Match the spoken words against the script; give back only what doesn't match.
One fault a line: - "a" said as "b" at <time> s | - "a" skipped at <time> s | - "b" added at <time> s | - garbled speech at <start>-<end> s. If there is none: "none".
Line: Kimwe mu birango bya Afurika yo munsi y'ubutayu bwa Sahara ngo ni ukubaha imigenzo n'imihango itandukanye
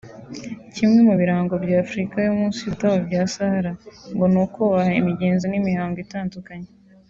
none